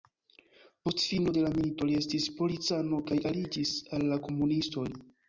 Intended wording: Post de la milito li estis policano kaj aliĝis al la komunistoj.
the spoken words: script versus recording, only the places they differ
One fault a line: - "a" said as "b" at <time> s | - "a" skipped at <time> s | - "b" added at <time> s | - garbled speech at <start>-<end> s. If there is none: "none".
- "fino" added at 1.1 s